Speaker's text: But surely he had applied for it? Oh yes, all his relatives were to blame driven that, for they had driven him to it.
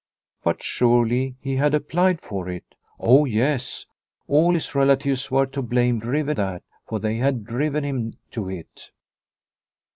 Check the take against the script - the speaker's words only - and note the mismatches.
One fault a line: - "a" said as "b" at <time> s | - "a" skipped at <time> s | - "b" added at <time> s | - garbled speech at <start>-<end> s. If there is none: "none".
none